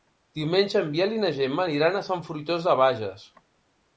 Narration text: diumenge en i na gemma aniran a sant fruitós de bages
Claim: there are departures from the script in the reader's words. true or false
true